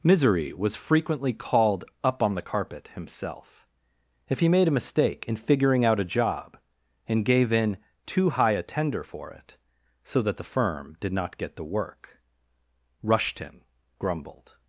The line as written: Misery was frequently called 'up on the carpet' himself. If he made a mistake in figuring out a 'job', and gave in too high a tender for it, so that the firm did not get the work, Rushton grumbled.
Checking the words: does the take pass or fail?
pass